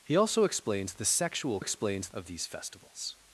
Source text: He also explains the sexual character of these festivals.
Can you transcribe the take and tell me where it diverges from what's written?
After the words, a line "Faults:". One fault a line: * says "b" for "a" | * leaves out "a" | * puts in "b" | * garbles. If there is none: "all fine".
He also explains the sexual explains of these festivals.
Faults:
* says "explains" for "character"